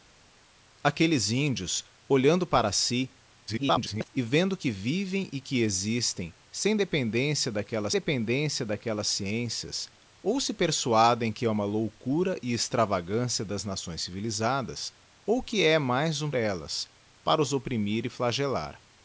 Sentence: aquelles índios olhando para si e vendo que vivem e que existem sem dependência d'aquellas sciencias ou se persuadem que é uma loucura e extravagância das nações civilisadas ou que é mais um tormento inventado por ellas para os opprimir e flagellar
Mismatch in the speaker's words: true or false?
true